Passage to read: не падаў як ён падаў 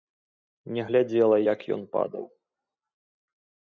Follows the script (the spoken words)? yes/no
no